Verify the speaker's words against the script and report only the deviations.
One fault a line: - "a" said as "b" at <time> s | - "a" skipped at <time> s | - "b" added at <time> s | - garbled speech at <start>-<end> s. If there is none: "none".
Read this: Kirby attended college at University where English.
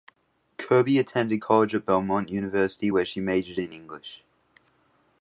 - "Belmont" added at 1.8 s
- "she majored in" added at 3.1 s